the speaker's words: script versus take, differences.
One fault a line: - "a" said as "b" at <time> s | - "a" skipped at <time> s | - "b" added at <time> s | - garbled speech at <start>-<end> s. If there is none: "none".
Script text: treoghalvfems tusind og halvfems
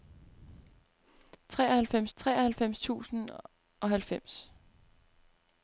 - "treoghalvfems" added at 2.2 s